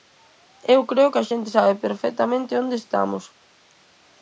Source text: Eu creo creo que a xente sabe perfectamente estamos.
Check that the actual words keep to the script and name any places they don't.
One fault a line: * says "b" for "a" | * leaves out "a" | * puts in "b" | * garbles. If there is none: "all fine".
* leaves out "creo"
* puts in "onde"